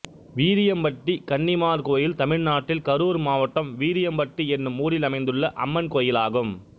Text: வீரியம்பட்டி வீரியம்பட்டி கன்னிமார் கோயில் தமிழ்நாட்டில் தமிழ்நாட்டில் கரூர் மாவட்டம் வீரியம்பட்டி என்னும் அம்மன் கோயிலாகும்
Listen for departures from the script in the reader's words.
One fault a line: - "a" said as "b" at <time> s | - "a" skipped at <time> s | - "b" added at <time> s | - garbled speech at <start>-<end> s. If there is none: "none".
- "வீரியம்பட்டி" skipped at 1.1 s
- "தமிழ்நாட்டில்" skipped at 2.8 s
- "ஊரில் அமைந்துள்ள" added at 4.8 s